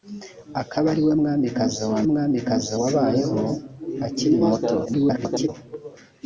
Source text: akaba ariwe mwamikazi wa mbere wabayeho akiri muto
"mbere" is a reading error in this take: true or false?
true